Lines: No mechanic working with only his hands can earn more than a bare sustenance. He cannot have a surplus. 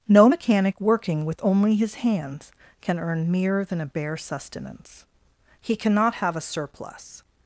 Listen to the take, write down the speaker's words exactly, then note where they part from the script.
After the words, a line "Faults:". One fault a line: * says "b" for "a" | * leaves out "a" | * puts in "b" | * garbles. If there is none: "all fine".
No mechanic working with only his hands can earn mere than a bare sustenance. He cannot have a surplus.
Faults:
* says "mere" for "more"